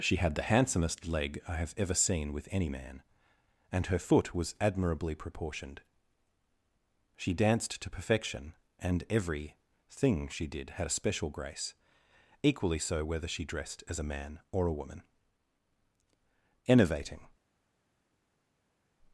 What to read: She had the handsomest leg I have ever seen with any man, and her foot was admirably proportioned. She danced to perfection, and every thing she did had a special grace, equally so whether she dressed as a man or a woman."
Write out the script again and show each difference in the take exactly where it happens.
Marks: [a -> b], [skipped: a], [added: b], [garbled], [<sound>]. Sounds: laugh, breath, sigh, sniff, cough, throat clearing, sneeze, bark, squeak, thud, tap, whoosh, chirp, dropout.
She had the handsomest leg I have ever seen with any man, and her foot was admirably proportioned. She danced to perfection, and every thing she did had a special grace, equally so whether she dressed as a man or a woman." [added: Enervating]